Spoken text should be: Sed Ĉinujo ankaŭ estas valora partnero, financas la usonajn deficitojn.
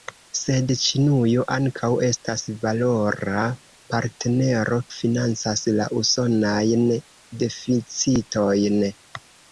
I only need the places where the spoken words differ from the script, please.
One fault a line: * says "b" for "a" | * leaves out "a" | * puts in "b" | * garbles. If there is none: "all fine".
all fine